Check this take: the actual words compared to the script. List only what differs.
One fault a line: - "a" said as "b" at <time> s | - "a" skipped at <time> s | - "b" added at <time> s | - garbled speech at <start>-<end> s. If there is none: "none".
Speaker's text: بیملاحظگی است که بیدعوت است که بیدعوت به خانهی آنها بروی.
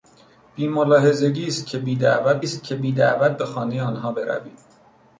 none